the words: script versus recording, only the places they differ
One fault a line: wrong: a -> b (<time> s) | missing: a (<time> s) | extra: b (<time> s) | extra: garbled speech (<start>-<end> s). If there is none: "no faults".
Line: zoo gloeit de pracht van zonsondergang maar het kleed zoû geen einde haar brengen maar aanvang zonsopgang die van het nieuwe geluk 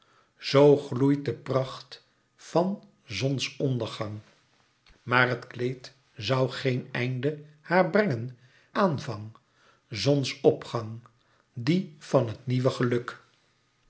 missing: maar (8.4 s)